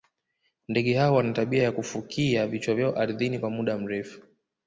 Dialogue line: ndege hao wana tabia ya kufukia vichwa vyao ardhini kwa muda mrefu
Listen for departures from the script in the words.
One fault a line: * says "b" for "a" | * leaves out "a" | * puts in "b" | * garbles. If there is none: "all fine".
all fine